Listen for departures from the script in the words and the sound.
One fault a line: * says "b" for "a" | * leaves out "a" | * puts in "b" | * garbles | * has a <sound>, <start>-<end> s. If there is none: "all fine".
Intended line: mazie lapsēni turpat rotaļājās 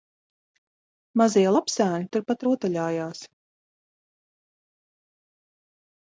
all fine